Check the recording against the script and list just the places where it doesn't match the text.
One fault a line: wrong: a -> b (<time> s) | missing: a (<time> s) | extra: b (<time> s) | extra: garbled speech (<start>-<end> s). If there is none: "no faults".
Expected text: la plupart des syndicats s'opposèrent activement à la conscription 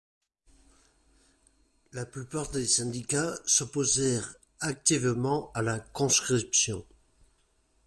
no faults